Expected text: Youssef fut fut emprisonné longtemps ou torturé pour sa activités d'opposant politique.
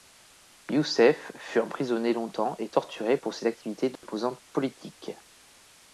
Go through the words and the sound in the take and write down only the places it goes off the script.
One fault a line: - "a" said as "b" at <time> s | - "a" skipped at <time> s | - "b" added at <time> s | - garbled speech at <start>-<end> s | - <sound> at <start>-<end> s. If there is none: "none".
- "fut" skipped at 1.6 s
- "ou" said as "et" at 2.6 s
- "sa" said as "ses" at 3.3 s
- dropout at 4.0-4.0 s